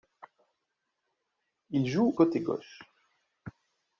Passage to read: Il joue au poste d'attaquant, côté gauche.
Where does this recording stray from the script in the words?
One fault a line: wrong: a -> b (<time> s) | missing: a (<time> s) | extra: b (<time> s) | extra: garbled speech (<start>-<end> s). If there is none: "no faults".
missing: au poste d'attaquant (2.1 s)